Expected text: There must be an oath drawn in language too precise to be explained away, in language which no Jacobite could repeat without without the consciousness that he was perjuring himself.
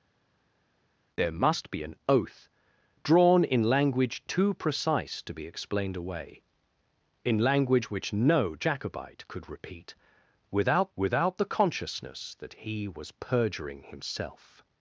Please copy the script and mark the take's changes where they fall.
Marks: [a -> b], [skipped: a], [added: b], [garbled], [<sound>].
There must be an oath drawn in language too precise to be explained away, in language which no Jacobite could repeat without without the consciousness that he was perjuring himself.